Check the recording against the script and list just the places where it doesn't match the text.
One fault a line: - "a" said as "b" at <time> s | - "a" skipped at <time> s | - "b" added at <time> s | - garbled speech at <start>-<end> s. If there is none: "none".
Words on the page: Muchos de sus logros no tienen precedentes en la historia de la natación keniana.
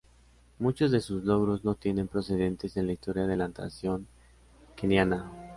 none